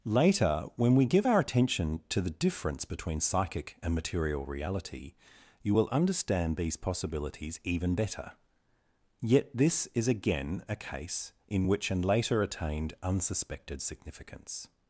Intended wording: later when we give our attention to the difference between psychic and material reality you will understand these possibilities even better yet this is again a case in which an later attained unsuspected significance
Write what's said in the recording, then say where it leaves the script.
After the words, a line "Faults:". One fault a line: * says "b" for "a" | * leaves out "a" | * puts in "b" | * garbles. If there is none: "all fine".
later when we give our attention to the difference between psychic and material reality you will understand these possibilities even better yet this is again a case in which an later attained unsuspected significance
Faults:
all fine